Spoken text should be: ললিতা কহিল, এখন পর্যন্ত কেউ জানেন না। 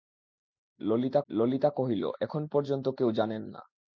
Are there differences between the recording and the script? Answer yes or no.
yes